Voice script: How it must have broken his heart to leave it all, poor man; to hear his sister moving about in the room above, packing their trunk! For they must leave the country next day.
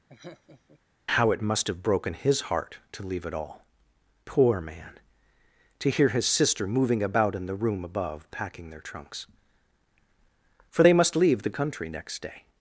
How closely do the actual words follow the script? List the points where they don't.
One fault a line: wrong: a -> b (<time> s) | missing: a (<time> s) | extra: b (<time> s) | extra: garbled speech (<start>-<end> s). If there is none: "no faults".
wrong: trunk -> trunks (8.8 s)